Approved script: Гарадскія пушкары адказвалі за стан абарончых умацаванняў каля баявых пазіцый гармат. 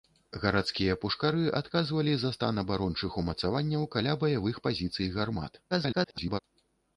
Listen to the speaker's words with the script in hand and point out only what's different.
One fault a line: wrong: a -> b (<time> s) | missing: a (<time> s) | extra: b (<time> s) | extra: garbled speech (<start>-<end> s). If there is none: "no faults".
extra: garbled speech (5.7-6.4 s)